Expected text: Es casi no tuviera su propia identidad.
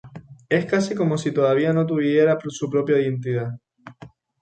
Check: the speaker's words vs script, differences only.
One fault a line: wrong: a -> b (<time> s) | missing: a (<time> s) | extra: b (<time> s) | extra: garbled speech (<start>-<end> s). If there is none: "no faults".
extra: como si todavía (0.9 s)